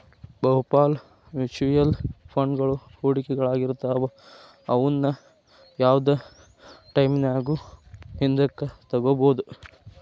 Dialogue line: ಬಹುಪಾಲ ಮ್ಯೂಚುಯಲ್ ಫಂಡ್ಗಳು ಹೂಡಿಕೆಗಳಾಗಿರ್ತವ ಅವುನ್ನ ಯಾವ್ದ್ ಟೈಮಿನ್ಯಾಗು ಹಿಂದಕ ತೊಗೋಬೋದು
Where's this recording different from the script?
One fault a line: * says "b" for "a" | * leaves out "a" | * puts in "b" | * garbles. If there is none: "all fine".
all fine